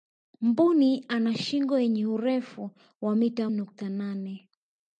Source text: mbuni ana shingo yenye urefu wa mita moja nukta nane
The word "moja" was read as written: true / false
false